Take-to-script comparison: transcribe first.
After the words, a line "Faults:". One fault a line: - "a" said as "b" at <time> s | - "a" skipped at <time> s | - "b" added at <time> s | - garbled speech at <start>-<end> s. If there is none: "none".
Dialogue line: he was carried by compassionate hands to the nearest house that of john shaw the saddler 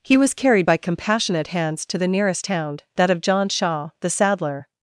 he was carried by compassionate hands to the nearest hound that of john shaw the saddler
Faults:
- "house" said as "hound" at 2.4 s